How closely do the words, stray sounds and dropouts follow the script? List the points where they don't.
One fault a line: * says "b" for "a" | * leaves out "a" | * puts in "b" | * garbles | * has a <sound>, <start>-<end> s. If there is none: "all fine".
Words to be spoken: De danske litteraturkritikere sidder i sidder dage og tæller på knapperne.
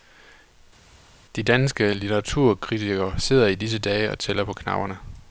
* says "disse" for "sidder"